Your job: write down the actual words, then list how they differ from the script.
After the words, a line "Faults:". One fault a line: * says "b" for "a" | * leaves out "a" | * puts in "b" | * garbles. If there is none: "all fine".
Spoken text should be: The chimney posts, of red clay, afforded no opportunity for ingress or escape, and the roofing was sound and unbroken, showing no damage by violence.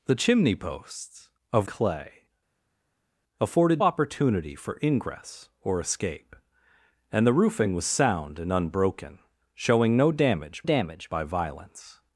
The chimney posts, of clay, afforded opportunity for ingress or escape, and the roofing was sound and unbroken, showing no damage damage by violence.
Faults:
* leaves out "red"
* leaves out "no"
* puts in "damage"